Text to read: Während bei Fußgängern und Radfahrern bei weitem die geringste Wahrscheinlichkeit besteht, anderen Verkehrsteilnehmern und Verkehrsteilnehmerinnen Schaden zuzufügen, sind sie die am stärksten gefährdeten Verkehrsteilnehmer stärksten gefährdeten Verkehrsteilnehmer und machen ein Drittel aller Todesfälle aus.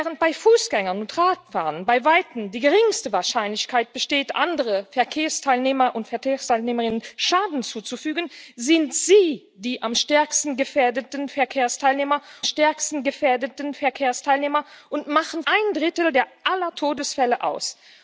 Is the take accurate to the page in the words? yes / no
yes